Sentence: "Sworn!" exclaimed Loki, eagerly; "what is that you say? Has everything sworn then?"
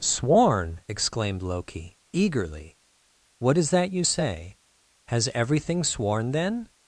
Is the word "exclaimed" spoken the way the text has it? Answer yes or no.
yes